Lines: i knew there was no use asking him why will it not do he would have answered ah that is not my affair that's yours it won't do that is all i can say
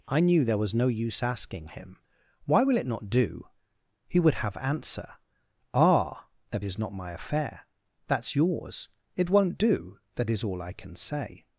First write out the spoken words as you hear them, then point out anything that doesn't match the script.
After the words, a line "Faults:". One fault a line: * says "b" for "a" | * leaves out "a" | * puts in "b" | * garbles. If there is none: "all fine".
i knew there was no use asking him why will it not do he would have answer ah that is not my affair that's yours it won't do that is all i can say
Faults:
* says "answer" for "answered"